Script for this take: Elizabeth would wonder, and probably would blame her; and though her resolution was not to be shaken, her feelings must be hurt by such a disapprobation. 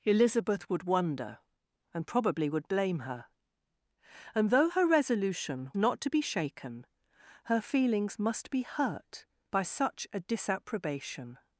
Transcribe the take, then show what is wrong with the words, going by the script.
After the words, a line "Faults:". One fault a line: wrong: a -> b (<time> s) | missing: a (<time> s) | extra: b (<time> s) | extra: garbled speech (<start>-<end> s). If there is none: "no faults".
Elizabeth would wonder, and probably would blame her; and though her resolution not to be shaken, her feelings must be hurt by such a disapprobation.
Faults:
missing: was (5.7 s)